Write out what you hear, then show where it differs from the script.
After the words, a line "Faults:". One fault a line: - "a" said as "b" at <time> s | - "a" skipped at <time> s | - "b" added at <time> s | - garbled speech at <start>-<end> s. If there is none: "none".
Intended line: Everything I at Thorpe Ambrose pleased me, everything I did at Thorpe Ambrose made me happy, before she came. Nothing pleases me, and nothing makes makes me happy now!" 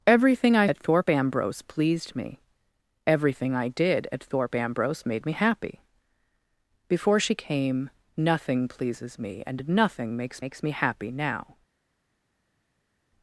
Everything I at Thorpe Ambrose pleased me, everything I did at Thorpe Ambrose made me happy, before she came. Nothing pleases me, and nothing makes makes me happy now!"
Faults:
none